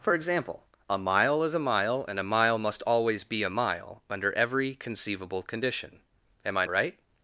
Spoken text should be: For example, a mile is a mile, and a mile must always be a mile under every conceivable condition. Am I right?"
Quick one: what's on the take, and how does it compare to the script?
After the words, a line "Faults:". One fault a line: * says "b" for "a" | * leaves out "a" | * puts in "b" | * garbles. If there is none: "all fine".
For example, a mile is a mile, and a mile must always be a mile under every conceivable condition. Am I right?"
Faults:
all fine